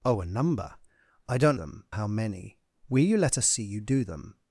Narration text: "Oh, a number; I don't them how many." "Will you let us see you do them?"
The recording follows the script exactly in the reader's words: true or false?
true